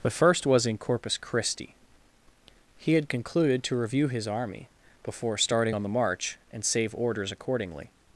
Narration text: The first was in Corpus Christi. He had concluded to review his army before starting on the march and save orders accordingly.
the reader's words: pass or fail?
pass